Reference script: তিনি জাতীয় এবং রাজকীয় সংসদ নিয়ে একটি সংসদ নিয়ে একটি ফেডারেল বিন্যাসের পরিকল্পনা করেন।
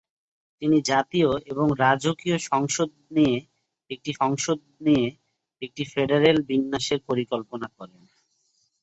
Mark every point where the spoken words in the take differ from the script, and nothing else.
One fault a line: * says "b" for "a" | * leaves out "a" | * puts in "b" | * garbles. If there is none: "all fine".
all fine